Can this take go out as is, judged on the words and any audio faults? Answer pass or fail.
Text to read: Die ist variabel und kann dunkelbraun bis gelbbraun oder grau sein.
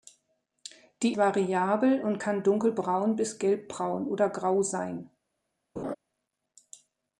fail